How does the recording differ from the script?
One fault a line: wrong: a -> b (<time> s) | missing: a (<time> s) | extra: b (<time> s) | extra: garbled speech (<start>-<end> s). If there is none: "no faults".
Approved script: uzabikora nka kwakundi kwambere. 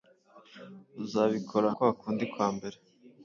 missing: nka (1.7 s)